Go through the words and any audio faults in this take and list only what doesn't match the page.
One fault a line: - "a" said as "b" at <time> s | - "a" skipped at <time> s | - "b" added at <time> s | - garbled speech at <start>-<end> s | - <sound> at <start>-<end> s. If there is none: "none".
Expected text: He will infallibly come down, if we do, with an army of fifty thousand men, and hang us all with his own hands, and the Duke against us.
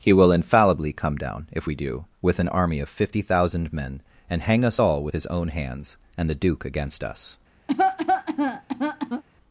- cough at 7.7-9.2 s